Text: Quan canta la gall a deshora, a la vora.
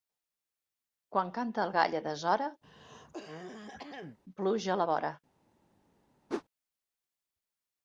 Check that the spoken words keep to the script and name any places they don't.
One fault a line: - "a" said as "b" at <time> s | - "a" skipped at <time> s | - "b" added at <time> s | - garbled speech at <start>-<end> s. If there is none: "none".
- "la" said as "el" at 1.6 s
- "pluja" added at 4.4 s